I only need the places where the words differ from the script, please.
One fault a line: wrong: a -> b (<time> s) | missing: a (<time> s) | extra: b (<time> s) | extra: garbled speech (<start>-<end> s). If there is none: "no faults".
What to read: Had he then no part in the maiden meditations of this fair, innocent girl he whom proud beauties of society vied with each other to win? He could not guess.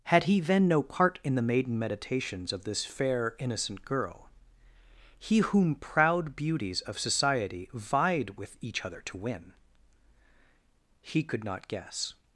no faults